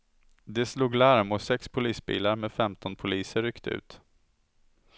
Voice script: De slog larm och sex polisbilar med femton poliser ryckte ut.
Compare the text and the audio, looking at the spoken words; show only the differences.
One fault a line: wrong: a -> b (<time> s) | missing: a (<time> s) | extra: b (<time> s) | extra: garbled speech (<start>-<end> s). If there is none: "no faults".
no faults